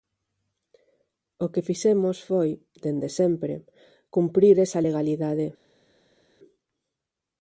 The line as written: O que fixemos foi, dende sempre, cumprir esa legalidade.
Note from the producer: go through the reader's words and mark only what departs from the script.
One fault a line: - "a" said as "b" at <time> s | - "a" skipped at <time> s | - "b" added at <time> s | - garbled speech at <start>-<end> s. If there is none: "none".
none